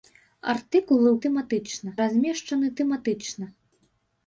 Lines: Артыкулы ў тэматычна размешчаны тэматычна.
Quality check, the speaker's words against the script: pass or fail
pass